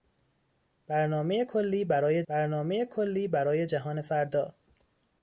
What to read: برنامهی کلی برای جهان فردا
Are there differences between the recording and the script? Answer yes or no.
yes